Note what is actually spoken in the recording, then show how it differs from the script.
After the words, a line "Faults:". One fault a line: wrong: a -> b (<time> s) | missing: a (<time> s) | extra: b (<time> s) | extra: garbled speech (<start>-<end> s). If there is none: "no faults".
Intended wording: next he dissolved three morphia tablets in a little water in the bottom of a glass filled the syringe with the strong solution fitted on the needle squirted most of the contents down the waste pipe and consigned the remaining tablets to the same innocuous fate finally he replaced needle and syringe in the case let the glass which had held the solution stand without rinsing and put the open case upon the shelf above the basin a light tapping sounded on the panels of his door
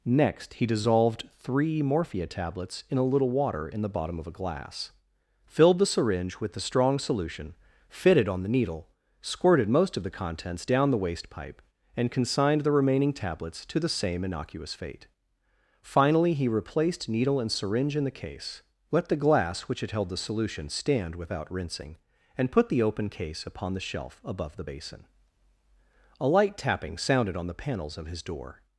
next he dissolved three morphia tablets in a little water in the bottom of a glass filled the syringe with the strong solution fitted on the needle squirted most of the contents down the waste pipe and consigned the remaining tablets to the same innocuous fate finally he replaced needle and syringe in the case let the glass which had held the solution stand without rinsing and put the open case upon the shelf above the basin a light tapping sounded on the panels of his door
Faults:
no faults